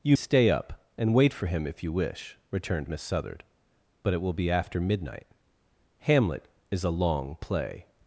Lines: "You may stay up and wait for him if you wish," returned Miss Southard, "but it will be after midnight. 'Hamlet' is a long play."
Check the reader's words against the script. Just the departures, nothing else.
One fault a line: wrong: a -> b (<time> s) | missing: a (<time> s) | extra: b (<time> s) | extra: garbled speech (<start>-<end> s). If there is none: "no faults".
missing: may (0.2 s)